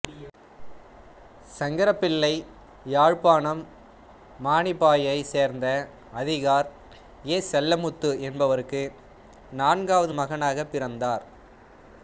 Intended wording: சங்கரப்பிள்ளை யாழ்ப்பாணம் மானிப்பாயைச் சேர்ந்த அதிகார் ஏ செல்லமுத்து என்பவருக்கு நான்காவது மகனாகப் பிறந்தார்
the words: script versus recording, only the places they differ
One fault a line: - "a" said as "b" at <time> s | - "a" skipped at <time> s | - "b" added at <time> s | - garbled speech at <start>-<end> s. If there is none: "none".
none